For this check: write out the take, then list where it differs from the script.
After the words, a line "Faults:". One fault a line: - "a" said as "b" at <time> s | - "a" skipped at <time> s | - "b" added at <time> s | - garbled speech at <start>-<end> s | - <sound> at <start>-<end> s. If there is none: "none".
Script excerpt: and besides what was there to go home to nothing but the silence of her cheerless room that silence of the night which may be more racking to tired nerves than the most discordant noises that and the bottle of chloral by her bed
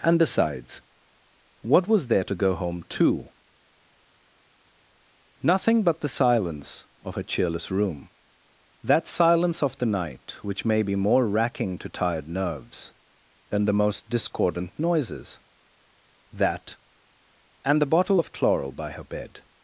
and besides what was there to go home to nothing but the silence of her cheerless room that silence of the night which may be more racking to tired nerves than the most discordant noises that and the bottle of chloral by her bed
Faults:
none